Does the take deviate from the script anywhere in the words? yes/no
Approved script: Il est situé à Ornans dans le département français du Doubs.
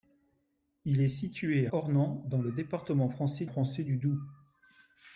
yes